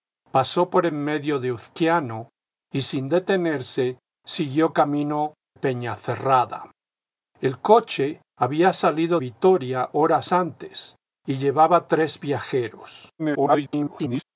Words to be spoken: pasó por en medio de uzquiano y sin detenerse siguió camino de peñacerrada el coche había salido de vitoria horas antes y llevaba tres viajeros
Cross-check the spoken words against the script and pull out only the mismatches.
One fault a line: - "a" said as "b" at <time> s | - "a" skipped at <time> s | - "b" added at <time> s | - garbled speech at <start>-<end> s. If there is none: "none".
- "de" skipped at 5.3 s
- "de" skipped at 9.2 s
- garbled speech at 13.2-14.2 s